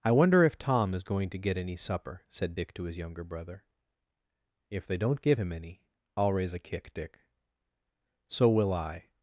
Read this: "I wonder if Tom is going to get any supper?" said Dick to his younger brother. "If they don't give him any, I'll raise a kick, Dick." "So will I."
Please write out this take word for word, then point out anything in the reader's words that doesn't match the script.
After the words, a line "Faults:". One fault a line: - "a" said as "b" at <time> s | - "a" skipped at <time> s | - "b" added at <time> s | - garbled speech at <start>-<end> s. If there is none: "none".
"I wonder if Tom is going to get any supper?" said Dick to his younger brother. "If they don't give him any, I'll raise a kick, Dick." "So will I."
Faults:
none